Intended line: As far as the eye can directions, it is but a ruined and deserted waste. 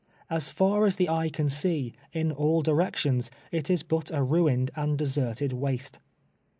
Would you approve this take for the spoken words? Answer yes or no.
no